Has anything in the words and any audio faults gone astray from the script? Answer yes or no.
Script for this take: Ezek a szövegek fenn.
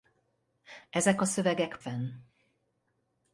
no